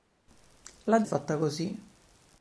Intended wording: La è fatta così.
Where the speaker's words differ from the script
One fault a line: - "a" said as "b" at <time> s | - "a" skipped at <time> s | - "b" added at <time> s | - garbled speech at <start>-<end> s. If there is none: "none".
none